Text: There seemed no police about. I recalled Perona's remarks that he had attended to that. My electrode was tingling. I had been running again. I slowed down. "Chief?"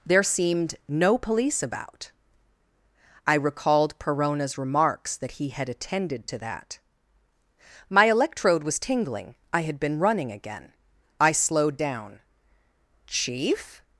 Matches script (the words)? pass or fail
pass